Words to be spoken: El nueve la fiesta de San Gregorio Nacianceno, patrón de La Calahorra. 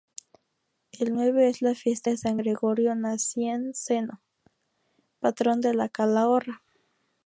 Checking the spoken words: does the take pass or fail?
fail